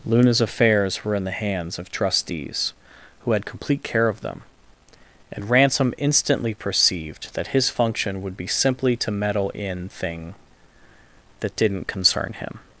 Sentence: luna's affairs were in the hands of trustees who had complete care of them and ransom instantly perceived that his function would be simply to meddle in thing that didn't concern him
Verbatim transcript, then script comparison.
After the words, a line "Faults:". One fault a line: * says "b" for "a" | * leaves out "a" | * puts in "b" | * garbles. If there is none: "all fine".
luna's affairs were in the hands of trustees who had complete care of them and ransom instantly perceived that his function would be simply to meddle in thing that didn't concern him
Faults:
all fine